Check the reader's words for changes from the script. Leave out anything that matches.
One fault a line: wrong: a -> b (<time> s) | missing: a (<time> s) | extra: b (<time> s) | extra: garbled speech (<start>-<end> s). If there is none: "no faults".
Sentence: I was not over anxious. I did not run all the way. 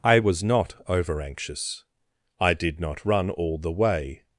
no faults